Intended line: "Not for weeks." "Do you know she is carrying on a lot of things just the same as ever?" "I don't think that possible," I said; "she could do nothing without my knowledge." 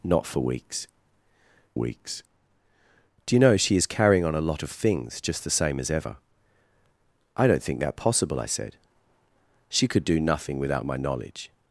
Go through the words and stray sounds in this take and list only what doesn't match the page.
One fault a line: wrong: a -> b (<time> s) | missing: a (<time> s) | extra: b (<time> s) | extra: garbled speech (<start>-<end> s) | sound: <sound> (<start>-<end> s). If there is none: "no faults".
extra: weeks (1.8 s)